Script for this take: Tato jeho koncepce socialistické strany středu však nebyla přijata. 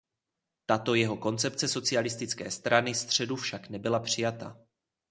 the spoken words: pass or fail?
pass